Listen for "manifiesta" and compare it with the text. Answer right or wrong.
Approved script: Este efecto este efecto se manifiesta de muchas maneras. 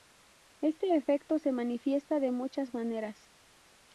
right